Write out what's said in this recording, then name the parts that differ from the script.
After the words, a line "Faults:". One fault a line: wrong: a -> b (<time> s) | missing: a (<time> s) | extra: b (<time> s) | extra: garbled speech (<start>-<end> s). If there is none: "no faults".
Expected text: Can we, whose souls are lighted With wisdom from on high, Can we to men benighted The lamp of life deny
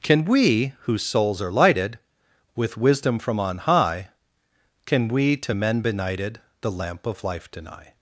Can we, whose souls are lighted With wisdom from on high, Can we to men benighted The lamp of life deny
Faults:
no faults